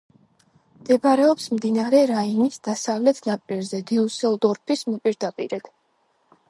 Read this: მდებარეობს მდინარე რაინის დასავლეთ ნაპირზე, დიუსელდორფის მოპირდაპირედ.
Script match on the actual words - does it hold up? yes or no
yes